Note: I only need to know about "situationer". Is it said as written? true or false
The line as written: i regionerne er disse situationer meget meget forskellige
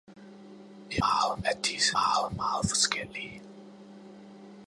false